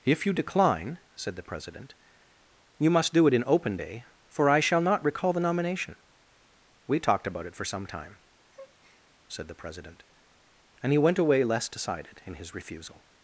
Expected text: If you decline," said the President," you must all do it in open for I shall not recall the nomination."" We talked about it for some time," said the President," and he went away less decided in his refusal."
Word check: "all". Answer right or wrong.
wrong